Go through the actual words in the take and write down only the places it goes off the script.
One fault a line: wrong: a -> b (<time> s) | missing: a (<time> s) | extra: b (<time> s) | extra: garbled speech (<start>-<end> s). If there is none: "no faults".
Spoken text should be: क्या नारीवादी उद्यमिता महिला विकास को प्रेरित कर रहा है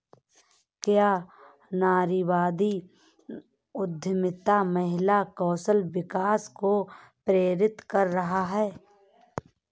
extra: कौशल (5.4 s)